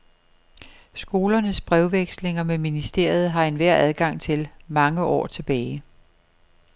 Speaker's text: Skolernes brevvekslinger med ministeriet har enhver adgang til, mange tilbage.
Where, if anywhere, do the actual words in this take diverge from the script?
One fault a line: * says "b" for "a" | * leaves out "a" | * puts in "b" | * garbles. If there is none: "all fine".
* puts in "år"